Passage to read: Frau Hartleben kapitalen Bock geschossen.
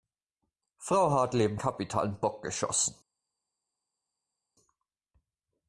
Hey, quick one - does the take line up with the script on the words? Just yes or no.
yes